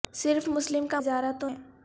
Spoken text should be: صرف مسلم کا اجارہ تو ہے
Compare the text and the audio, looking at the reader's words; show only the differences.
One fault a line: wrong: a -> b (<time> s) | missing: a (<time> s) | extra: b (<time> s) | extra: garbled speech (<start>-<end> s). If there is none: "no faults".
no faults